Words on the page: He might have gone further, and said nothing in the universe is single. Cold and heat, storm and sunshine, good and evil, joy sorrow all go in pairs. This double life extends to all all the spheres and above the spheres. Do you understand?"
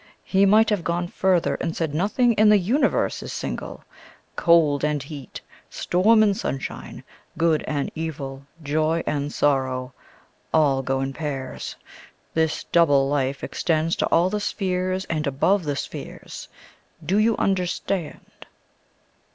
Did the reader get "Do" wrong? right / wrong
right